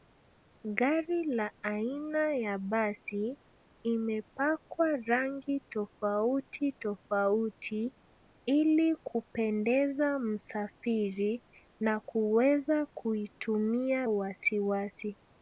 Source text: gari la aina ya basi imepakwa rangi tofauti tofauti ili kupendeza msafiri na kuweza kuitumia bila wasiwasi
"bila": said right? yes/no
no